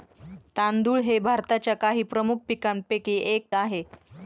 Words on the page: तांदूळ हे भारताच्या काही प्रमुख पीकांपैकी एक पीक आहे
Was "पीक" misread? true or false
true